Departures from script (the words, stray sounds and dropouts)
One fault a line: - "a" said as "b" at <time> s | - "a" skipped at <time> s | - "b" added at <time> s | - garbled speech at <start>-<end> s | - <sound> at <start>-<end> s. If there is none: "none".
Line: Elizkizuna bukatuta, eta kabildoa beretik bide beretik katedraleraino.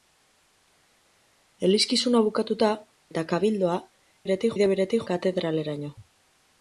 none